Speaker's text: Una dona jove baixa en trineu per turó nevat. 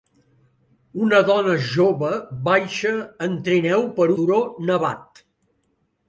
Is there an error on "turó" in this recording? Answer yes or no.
no